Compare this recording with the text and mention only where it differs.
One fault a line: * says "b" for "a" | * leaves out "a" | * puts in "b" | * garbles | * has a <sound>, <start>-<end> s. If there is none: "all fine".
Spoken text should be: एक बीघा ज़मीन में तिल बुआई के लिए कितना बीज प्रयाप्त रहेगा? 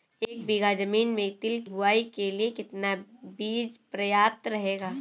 all fine